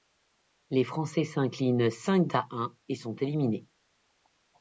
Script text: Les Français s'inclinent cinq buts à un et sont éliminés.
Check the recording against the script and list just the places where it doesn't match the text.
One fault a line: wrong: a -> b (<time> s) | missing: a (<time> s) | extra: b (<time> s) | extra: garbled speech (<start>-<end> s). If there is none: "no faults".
missing: buts (2.3 s)